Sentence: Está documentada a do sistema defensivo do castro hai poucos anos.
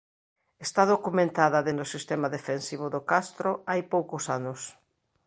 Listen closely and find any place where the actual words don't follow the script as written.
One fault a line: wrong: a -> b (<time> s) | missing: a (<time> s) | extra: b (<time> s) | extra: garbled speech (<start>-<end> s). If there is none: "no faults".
no faults